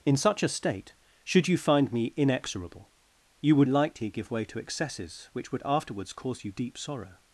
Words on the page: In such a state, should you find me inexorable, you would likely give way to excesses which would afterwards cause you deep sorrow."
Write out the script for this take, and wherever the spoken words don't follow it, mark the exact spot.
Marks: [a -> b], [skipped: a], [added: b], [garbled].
In such a state, should you find me inexorable, you would likely give way to excesses which would afterwards cause you deep sorrow."